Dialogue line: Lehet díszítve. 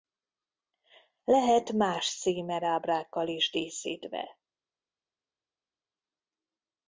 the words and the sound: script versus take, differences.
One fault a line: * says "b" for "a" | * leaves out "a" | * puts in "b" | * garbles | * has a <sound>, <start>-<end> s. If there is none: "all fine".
* puts in "más címerábrákkal is"